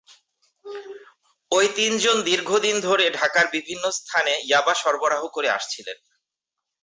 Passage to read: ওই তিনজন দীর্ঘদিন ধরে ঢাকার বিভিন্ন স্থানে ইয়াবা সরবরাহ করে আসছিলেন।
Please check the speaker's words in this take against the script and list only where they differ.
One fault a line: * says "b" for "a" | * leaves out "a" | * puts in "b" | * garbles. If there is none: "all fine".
all fine